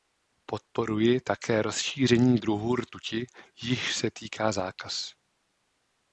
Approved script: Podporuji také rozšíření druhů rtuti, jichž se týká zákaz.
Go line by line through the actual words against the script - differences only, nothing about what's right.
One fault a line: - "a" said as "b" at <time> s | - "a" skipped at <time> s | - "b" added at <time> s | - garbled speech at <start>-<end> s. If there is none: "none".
none